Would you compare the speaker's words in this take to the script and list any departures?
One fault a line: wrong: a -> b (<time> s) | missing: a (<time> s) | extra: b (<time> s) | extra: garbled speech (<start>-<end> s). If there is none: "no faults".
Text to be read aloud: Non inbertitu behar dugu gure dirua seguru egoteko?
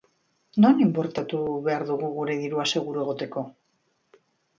no faults